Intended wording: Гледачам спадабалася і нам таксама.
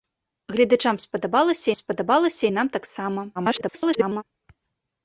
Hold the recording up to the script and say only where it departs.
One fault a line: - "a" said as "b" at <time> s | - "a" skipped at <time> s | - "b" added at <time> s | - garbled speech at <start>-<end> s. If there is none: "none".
- "спадабалася" added at 1.8 s
- garbled speech at 3.3-4.2 s